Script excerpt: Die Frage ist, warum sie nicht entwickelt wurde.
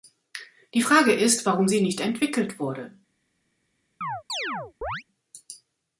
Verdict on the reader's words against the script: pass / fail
pass